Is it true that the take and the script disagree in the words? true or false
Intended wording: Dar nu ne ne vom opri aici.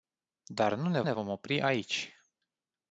false